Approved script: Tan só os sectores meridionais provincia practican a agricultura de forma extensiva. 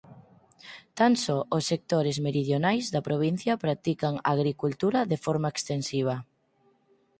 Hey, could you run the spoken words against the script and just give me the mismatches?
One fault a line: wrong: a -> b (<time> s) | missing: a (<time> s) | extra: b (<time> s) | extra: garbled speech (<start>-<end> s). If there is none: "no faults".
extra: da (2.9 s)